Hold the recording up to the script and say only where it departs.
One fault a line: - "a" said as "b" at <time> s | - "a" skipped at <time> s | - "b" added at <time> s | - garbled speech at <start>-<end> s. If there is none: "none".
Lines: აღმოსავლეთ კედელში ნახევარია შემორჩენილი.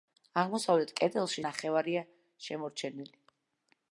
none